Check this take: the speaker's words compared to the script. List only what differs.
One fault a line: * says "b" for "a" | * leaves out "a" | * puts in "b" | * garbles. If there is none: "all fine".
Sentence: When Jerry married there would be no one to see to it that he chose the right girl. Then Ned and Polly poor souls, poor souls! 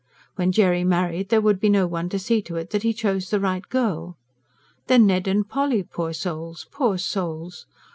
all fine